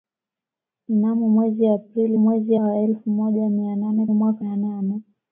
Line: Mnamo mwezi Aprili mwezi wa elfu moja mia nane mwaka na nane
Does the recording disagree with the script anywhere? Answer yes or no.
no